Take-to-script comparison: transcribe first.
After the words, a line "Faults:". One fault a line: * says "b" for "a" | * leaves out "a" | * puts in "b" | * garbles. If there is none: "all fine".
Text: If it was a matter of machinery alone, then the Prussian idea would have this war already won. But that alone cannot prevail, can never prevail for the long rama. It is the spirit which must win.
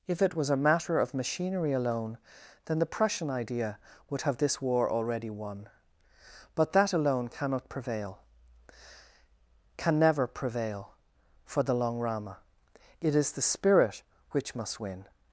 If it was a matter of machinery alone, then the Prussian idea would have this war already won. But that alone cannot prevail, can never prevail for the long rama. It is the spirit which must win.
Faults:
all fine